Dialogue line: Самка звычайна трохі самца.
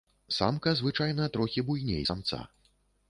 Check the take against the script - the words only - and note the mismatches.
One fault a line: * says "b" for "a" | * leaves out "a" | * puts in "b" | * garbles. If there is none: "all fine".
* puts in "буйней"